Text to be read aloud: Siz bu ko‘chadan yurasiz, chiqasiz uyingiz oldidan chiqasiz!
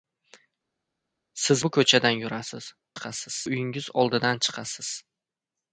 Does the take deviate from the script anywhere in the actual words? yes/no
no